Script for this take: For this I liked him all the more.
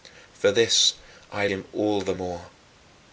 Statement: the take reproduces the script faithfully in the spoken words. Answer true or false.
false